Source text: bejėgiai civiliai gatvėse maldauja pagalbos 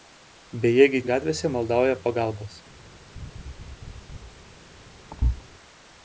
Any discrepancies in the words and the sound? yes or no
yes